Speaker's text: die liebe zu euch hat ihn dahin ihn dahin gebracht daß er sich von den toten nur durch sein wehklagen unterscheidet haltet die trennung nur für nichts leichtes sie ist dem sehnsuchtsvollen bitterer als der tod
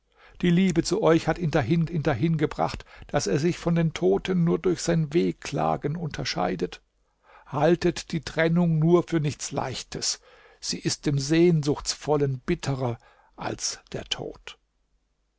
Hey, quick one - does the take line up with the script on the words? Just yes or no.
yes